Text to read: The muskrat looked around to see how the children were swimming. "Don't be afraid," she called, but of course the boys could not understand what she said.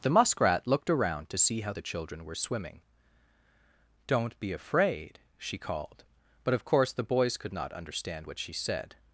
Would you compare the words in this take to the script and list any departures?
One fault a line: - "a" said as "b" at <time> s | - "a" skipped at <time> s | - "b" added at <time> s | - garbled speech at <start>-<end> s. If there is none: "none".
none